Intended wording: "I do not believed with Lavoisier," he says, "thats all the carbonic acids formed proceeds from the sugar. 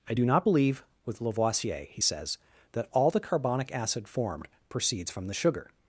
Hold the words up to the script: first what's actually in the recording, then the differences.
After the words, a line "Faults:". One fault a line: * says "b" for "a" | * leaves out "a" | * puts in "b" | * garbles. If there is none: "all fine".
"I do not believe with Lavoisier," he says, "that all the carbonic acid formed proceeds from the sugar.
Faults:
* says "believe" for "believed"
* says "that" for "thats"
* says "acid" for "acids"